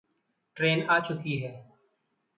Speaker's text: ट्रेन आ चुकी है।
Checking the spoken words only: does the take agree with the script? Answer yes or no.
yes